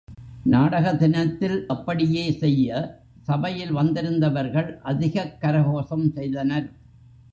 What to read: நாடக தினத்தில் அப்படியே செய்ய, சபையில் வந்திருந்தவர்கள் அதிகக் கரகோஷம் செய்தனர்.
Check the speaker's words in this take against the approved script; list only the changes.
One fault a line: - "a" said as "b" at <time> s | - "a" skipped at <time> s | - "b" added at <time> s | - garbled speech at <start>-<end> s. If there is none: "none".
none